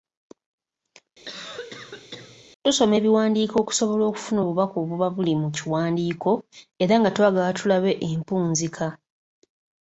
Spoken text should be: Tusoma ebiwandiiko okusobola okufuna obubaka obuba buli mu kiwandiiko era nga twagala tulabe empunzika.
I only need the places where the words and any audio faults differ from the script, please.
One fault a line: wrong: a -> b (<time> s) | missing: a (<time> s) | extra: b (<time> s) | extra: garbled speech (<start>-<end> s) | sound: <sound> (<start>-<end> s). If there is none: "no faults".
sound: cough (1.2-2.4 s)